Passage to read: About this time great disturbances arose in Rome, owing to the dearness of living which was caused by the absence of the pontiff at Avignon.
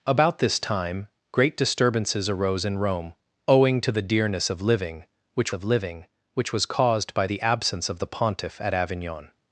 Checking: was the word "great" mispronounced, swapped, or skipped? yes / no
no